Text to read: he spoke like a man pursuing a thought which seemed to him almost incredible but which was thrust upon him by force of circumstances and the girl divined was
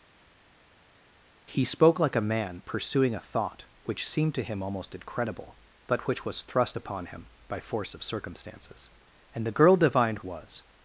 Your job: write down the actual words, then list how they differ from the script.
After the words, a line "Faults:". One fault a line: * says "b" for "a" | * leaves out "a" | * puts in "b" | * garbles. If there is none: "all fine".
he spoke like a man pursuing a thought which seemed to him almost incredible but which was thrust upon him by force of circumstances and the girl divined was
Faults:
all fine